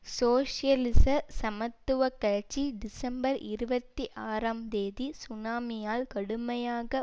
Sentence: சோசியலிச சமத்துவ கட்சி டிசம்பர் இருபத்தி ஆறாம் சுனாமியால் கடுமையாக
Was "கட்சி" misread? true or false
false